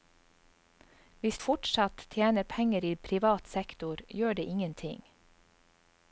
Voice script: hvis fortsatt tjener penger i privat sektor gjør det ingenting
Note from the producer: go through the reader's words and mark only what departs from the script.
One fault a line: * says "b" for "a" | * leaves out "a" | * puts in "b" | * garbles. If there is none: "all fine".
all fine